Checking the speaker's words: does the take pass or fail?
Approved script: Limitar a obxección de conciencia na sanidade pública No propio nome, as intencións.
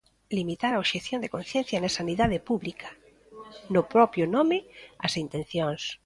pass